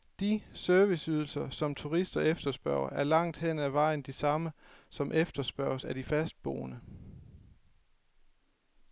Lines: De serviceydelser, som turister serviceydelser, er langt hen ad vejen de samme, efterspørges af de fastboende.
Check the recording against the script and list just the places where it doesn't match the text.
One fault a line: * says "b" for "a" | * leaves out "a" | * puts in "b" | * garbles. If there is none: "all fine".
* says "efterspørger" for "serviceydelser"
* puts in "som"